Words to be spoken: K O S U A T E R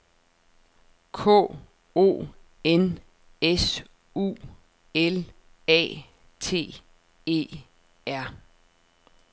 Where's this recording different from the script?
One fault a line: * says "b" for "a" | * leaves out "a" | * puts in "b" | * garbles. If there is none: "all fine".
* puts in "N"
* puts in "L"